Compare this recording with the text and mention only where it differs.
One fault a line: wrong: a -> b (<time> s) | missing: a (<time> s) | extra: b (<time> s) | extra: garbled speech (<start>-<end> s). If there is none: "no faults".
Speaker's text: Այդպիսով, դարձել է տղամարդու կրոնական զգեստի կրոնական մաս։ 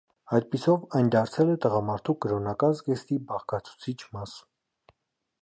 extra: այն (1.0 s)
wrong: կրոնական -> բաղկացուցիչ (3.3 s)